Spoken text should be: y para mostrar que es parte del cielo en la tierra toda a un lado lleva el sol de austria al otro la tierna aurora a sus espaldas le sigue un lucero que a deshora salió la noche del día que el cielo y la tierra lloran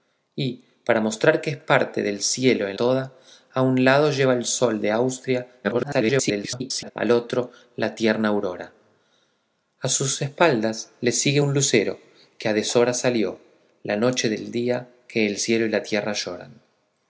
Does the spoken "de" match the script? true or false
true